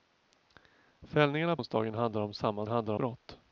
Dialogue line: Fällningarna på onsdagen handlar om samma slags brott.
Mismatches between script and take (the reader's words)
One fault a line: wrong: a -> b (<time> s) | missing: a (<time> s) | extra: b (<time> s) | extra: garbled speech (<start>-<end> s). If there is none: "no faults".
missing: på (1.6 s)
wrong: slags -> handlar (2.7 s)